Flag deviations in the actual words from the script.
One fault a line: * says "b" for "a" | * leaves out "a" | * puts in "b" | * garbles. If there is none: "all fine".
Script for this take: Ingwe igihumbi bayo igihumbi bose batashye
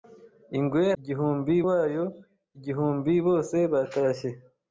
all fine